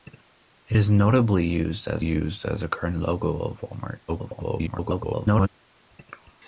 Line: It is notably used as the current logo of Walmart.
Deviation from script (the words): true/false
true